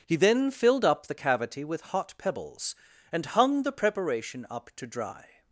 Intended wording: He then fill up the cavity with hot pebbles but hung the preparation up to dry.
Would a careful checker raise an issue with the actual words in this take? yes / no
yes